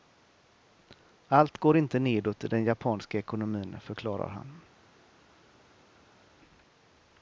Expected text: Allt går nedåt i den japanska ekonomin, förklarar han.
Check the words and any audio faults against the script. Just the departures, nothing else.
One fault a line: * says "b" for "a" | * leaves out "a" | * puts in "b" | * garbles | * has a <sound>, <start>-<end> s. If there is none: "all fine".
* puts in "inte"